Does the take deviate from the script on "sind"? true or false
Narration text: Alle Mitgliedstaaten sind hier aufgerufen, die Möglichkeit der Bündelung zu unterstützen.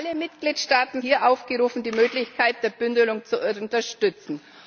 true